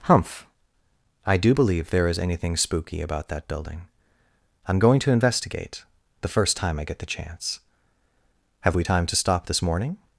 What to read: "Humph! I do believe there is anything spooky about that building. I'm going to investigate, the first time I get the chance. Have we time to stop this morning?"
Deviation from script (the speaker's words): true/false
false